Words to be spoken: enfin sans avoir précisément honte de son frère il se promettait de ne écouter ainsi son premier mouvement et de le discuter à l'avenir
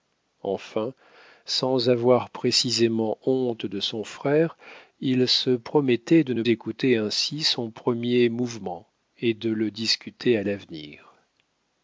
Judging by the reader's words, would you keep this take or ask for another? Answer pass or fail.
pass